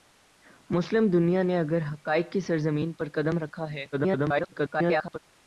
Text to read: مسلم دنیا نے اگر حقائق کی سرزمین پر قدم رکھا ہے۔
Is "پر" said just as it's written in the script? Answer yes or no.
yes